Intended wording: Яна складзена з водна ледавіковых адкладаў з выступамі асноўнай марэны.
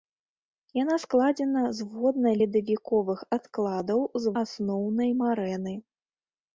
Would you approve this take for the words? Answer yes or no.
no